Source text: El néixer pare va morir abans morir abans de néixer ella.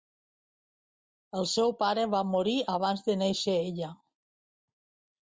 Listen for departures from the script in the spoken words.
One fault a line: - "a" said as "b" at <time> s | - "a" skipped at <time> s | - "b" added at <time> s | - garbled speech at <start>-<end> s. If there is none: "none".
- "néixer" said as "seu" at 1.5 s
- "morir abans" skipped at 3.0 s